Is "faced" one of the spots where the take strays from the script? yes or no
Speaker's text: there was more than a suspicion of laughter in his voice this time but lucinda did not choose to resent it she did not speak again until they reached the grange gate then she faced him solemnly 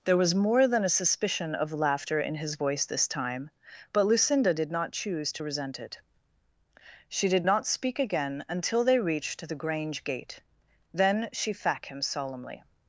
yes